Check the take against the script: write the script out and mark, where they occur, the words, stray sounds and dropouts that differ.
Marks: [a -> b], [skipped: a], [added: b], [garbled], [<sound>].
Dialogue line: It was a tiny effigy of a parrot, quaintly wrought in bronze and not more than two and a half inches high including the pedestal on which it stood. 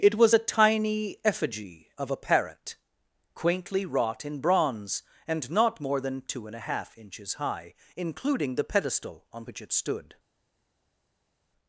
It was a tiny effigy of a parrot, quaintly wrought in bronze and not more than two and a half inches high including the pedestal on which it stood.